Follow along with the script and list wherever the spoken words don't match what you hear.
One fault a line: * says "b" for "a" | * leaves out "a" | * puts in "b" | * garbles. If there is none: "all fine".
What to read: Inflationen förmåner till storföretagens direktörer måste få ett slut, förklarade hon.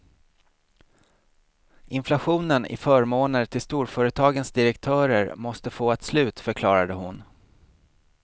* puts in "i"